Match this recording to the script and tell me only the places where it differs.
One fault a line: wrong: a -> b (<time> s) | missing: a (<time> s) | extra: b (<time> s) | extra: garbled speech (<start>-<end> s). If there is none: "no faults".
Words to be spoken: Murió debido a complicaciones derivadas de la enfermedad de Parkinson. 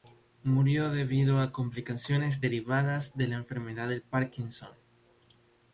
no faults